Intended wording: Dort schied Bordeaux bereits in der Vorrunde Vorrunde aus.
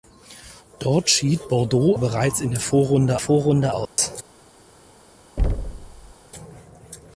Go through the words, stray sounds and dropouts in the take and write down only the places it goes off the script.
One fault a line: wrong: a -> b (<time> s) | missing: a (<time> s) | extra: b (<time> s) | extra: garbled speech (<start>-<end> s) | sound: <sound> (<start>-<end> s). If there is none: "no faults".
sound: dropout (3.9-4.0 s)
sound: thud (5.4-6.1 s)